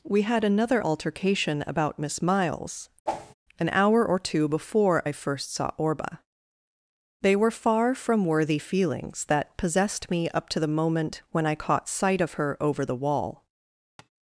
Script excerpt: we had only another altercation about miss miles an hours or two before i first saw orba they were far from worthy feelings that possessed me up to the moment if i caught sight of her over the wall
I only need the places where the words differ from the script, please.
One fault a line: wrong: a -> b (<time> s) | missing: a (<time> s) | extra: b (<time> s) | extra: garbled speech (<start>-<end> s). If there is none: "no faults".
missing: only (0.4 s)
wrong: hours -> hour (3.7 s)
wrong: if -> when (11.3 s)